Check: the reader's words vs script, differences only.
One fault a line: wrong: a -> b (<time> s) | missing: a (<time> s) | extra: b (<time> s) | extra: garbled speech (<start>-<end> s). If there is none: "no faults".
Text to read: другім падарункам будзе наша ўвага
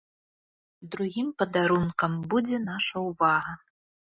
no faults